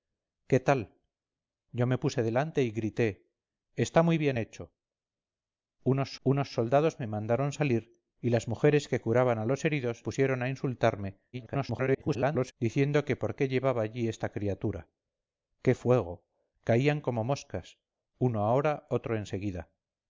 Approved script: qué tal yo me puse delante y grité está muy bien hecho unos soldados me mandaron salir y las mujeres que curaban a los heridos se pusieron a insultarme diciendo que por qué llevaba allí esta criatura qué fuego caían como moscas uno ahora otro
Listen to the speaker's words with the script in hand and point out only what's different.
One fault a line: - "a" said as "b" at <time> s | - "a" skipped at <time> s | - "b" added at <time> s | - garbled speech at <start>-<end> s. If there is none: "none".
- "unos" added at 6.2 s
- "se" skipped at 10.0 s
- garbled speech at 11.3-12.5 s